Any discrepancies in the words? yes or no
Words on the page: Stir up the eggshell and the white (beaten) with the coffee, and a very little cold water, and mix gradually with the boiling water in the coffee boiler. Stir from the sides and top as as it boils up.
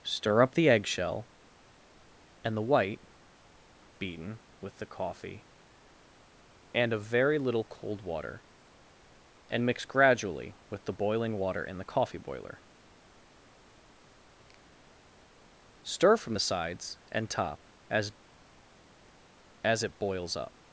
no